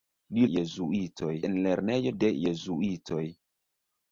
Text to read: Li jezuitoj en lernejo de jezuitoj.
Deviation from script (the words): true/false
false